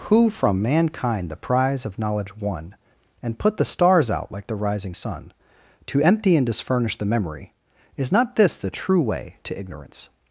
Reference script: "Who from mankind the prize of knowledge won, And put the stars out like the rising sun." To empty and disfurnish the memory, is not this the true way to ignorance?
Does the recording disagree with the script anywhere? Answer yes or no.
no